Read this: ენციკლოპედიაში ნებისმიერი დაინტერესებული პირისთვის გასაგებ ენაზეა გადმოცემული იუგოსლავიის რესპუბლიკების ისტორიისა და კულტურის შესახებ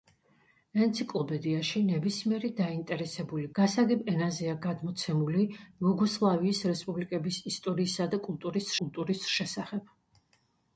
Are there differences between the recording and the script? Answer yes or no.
yes